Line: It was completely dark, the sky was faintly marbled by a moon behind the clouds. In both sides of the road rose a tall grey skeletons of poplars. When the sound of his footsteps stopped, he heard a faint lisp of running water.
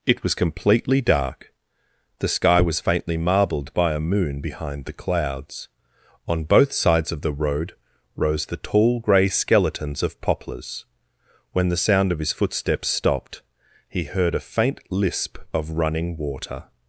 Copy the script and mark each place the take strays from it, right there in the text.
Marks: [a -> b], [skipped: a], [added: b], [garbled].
It was completely dark, the sky was faintly marbled by a moon behind the clouds. [In -> On] both sides of the road rose [a -> the] tall grey skeletons of poplars. When the sound of his footsteps stopped, he heard a faint lisp of running water.